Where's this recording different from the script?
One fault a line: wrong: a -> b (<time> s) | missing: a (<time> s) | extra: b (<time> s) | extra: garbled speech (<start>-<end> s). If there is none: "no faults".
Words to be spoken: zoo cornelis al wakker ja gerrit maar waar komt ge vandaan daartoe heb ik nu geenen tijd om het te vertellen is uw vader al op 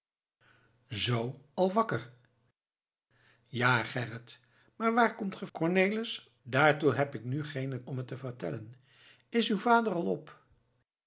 missing: cornelis (1.4 s)
wrong: vandaan -> cornelis (5.5 s)
missing: tijd (7.8 s)